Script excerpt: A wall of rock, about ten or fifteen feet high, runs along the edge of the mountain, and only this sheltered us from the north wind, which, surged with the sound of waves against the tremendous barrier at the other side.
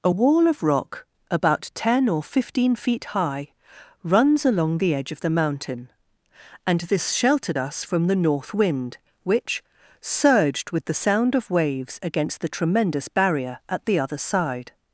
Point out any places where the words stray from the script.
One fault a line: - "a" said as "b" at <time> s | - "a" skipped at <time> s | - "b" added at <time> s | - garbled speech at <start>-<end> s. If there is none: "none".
- "only" skipped at 6.8 s